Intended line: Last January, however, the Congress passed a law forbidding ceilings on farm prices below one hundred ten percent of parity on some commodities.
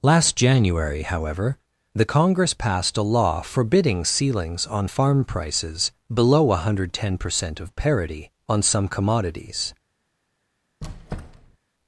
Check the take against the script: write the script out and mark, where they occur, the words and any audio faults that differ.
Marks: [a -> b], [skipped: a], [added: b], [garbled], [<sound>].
Last January, however, the Congress passed a law forbidding ceilings on farm prices below one hundred ten percent of parity on some commodities. [squeak]